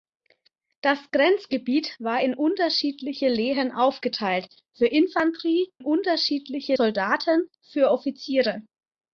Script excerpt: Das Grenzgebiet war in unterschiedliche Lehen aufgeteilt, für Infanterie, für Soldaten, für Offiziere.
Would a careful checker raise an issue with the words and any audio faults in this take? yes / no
yes